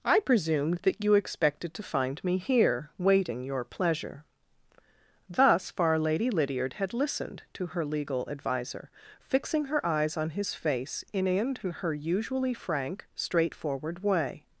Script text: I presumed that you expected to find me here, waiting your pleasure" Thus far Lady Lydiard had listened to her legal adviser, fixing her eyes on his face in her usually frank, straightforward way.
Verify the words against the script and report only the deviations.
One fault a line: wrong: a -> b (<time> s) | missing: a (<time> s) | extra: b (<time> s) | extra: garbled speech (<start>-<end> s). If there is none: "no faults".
extra: in (11.3 s)